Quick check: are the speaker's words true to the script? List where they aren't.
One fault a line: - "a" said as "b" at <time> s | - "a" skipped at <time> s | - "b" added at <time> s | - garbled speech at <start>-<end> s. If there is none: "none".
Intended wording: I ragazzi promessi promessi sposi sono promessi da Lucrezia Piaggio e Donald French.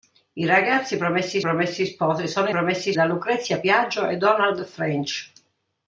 none